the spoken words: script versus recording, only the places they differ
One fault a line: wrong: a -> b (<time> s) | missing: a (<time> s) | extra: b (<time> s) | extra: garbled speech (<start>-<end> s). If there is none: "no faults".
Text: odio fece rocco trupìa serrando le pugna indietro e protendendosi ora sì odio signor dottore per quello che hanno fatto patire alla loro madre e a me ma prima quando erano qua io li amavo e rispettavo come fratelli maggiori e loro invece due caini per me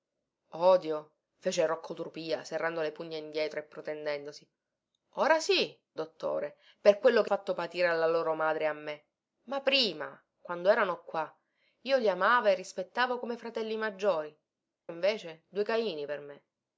missing: odio signor (5.8 s)
missing: hanno (7.3 s)
missing: e loro (14.3 s)